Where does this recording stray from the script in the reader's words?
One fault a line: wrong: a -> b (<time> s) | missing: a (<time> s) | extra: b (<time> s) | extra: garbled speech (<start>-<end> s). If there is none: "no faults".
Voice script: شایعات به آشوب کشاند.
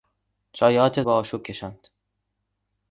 no faults